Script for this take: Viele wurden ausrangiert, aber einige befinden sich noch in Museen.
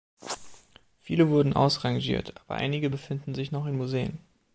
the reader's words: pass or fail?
pass